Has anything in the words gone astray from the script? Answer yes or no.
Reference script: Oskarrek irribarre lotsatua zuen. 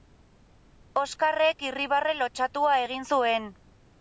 yes